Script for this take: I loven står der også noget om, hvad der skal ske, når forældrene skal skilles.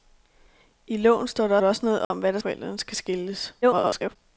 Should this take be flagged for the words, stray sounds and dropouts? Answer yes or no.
yes